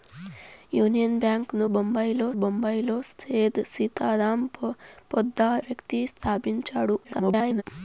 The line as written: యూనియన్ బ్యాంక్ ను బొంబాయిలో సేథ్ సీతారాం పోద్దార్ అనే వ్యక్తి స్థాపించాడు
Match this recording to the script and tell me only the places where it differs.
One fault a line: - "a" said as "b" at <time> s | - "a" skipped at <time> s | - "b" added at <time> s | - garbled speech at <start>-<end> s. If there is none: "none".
- "బొంబాయిలో" added at 2.3 s
- "అనే" skipped at 5.6 s
- garbled speech at 7.0-7.6 s